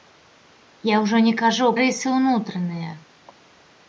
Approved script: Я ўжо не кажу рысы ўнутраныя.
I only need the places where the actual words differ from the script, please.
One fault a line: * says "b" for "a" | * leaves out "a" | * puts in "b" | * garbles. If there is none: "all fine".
all fine